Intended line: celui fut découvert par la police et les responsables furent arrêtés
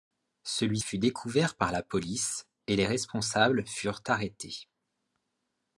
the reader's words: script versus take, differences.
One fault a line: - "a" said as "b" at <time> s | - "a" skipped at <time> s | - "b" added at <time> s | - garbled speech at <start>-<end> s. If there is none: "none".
none